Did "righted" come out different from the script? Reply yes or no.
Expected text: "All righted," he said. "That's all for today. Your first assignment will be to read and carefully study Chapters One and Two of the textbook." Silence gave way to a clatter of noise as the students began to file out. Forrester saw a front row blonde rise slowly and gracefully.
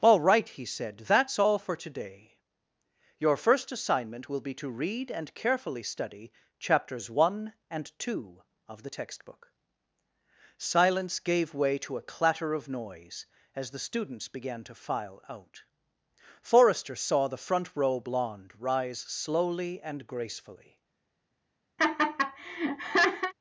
yes